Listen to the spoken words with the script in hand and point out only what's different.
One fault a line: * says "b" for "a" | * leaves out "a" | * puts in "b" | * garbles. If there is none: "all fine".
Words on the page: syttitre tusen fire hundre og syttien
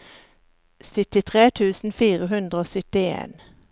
all fine